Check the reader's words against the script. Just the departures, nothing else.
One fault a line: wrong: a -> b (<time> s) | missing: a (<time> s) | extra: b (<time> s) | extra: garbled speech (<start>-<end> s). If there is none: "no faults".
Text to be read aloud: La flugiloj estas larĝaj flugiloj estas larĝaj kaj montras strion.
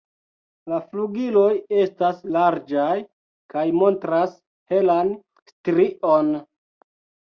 missing: flugiloj estas larĝaj (3.0 s)
extra: helan (4.7 s)